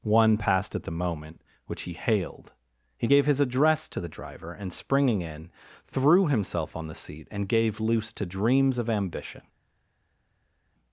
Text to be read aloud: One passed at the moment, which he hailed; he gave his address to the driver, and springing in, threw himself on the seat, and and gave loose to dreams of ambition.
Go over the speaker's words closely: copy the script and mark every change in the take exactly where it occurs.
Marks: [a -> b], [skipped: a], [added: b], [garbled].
One passed at the moment, which he hailed; he gave his address to the driver, and springing in, threw himself on the seat, and [skipped: and] gave loose to dreams of ambition.